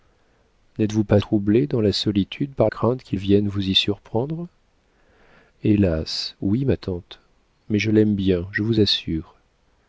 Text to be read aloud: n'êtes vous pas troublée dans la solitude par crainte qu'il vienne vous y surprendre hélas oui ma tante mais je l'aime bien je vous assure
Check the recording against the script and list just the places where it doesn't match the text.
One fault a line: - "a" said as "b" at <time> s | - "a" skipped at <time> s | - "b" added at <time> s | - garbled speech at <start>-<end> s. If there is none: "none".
none